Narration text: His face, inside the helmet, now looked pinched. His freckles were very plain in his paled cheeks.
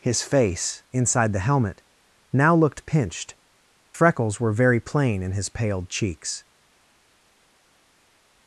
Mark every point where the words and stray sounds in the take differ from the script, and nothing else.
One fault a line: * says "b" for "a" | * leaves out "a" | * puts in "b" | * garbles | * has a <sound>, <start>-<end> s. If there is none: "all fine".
* leaves out "His"